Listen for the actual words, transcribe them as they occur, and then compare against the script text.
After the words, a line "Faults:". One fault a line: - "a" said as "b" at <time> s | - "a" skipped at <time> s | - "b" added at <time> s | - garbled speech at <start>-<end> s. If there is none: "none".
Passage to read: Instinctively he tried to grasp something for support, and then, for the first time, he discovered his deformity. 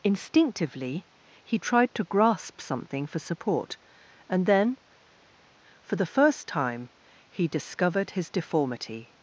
Instinctively he tried to grasp something for support, and then, for the first time, he discovered his deformity.
Faults:
none